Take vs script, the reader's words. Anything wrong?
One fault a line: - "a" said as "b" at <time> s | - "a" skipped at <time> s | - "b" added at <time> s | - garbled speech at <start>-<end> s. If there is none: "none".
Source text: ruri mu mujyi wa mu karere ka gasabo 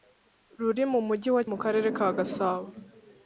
none